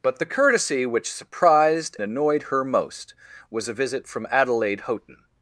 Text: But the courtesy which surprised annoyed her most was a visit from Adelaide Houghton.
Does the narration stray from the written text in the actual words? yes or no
no